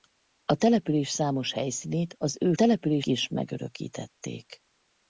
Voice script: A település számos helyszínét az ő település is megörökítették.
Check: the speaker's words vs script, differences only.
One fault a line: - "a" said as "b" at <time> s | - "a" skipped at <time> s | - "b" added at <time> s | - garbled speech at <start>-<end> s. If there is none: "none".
none